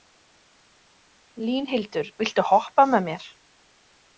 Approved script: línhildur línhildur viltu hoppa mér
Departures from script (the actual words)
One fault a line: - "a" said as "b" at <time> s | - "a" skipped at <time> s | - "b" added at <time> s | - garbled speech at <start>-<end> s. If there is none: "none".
- "línhildur" skipped at 2.1 s
- "með" added at 2.9 s